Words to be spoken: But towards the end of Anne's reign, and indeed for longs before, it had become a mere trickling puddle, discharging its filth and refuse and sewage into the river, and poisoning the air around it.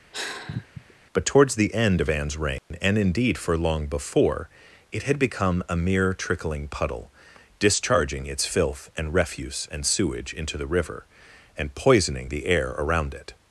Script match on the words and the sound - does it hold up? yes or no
no